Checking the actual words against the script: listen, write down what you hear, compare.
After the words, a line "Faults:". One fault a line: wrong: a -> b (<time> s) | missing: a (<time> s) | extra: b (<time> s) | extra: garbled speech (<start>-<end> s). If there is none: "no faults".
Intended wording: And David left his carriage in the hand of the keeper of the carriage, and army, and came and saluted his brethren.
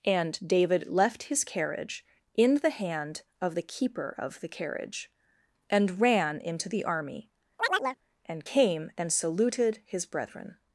And David left his carriage in the hand of the keeper of the carriage, and ran into the army, and came and saluted his brethren.
Faults:
extra: ran into the (6.0 s)